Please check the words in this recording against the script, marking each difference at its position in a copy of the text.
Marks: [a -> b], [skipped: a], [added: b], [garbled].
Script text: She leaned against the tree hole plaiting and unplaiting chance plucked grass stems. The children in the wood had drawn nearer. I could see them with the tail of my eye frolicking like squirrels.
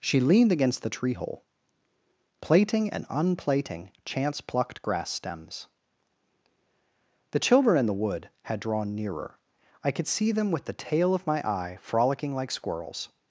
She leaned against the tree hole plaiting and unplaiting chance plucked grass stems. The children in the wood had drawn nearer. I could see them with the tail of my eye frolicking like squirrels.